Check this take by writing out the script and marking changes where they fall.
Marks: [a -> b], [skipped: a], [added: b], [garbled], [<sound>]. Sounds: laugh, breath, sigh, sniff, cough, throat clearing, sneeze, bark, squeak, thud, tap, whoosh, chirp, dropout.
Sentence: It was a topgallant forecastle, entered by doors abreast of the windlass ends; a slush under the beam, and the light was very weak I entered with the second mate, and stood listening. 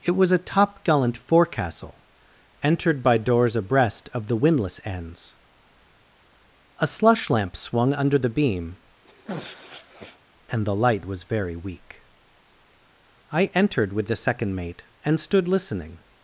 It was a topgallant forecastle, entered by doors abreast of the windlass ends; a slush [added: lamp swung] under the beam, [sniff] and the light was very weak I entered with the second mate, and stood listening.